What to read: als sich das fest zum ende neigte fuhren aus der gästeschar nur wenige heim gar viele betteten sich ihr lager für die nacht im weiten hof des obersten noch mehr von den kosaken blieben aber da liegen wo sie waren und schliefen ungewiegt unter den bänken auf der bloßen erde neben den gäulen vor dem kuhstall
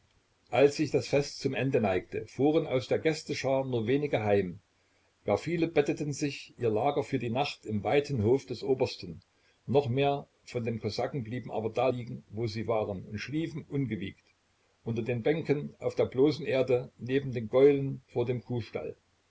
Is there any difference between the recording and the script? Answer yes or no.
no